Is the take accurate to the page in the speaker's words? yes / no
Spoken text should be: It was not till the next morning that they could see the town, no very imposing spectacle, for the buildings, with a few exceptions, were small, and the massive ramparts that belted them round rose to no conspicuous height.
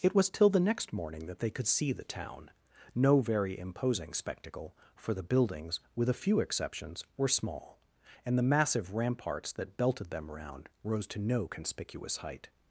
no